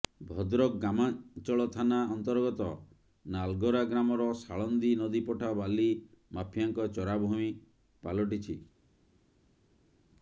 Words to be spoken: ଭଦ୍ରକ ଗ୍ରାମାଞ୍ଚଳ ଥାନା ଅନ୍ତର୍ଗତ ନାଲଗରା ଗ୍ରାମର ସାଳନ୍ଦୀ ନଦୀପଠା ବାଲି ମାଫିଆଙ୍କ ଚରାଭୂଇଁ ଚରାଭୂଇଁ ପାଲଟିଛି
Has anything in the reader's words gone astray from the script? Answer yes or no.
yes